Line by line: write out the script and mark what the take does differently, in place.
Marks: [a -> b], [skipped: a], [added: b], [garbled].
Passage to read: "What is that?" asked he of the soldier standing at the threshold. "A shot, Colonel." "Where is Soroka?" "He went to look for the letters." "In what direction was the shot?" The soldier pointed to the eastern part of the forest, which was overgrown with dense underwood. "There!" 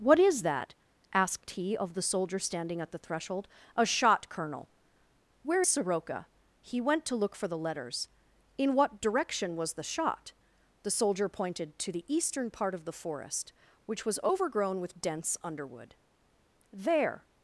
"What is that?" asked he of the soldier standing at the threshold. "A shot, Colonel." "Where [skipped: is] Soroka?" "He went to look for the letters." "In what direction was the shot?" The soldier pointed to the eastern part of the forest, which was overgrown with dense underwood. "There!"